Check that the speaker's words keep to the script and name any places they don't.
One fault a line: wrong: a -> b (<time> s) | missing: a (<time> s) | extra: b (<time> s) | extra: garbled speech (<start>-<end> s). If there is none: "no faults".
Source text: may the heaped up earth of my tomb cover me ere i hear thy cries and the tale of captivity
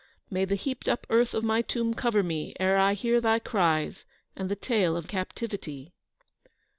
no faults